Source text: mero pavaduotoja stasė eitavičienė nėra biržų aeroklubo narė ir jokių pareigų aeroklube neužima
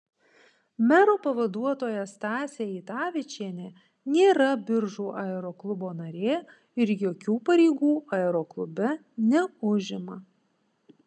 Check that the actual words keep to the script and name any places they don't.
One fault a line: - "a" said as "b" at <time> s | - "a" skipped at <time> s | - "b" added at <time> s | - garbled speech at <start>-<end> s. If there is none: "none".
none